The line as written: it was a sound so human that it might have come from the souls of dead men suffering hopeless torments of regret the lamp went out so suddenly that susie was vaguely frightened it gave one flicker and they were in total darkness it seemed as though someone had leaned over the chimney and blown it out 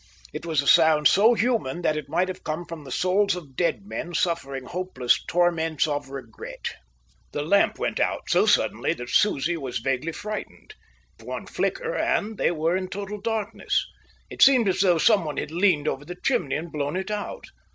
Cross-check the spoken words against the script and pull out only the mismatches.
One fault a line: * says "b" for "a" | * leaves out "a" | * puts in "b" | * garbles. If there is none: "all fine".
* leaves out "it gave"